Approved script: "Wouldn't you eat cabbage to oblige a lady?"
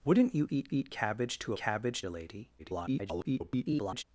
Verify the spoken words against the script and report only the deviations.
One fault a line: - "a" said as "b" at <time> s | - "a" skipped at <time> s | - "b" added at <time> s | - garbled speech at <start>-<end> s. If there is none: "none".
- "eat" added at 0.7 s
- "oblige" said as "cabbage" at 1.6 s
- garbled speech at 2.6-4.0 s